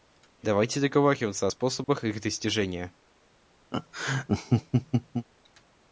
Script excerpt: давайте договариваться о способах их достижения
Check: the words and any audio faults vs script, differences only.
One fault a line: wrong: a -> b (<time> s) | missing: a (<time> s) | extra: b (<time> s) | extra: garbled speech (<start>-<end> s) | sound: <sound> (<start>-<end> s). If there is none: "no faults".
sound: dropout (1.8-1.9 s)
sound: laugh (3.7-5.3 s)